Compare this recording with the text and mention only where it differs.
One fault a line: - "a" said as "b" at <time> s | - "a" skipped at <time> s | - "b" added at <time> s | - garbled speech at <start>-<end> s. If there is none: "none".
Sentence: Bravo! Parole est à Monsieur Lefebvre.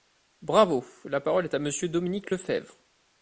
- "La" added at 1.1 s
- "Dominique" added at 1.9 s